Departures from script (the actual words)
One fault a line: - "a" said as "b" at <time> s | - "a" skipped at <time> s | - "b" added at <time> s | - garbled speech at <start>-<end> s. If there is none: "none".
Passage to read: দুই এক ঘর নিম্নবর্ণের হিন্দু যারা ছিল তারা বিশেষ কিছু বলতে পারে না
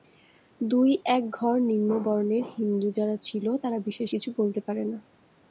none